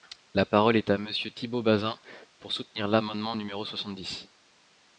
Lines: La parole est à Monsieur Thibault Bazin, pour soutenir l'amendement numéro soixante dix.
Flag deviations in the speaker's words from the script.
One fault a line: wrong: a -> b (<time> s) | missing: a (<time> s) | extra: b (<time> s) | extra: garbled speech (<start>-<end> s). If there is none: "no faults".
no faults